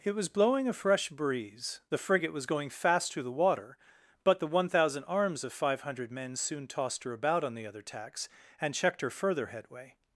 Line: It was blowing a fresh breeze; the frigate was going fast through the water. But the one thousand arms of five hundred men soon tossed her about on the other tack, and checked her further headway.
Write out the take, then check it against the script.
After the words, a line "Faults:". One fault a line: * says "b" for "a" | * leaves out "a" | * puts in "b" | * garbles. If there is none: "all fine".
It was blowing a fresh breeze; the frigate was going fast through the water. But the one thousand arms of five hundred men soon tossed her about on the other tacks, and checked her further headway.
Faults:
* says "tacks" for "tack"